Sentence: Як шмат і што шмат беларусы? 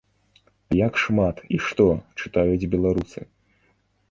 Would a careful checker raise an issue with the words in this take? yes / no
yes